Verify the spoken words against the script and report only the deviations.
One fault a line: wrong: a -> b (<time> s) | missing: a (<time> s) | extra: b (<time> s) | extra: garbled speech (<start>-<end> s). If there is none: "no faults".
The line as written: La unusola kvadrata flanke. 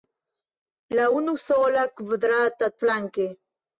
no faults